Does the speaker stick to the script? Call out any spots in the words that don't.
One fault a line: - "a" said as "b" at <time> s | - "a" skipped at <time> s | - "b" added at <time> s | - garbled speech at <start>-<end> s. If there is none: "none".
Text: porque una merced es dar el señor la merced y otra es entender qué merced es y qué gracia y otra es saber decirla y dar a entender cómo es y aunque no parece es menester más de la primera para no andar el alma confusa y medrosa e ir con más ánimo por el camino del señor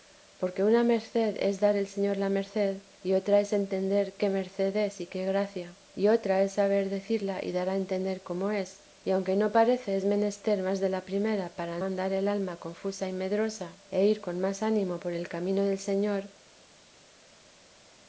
- "no" skipped at 11.8 s